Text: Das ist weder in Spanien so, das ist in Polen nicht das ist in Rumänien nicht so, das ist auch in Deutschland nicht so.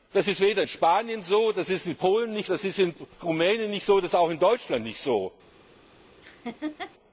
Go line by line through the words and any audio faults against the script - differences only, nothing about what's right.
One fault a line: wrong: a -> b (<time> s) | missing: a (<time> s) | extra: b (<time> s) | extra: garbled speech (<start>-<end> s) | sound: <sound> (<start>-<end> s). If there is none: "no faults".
sound: laugh (6.2-6.9 s)